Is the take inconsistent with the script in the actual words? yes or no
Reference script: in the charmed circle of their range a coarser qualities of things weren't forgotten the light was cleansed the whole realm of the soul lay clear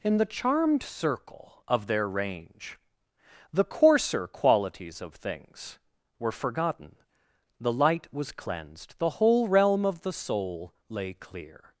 yes